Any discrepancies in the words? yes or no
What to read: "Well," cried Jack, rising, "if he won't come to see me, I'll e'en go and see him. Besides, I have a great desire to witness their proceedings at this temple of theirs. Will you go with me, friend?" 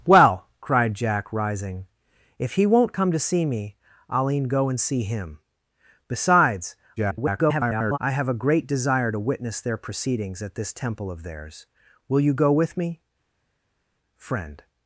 yes